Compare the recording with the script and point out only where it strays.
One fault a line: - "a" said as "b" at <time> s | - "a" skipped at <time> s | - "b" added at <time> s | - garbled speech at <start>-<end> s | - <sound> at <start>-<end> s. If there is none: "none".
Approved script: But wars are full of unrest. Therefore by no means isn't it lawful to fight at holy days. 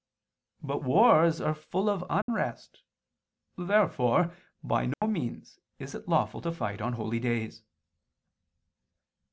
- dropout at 2.2-2.3 s
- dropout at 4.9-5.0 s
- "isn't" said as "is" at 5.8 s
- "at" said as "on" at 6.8 s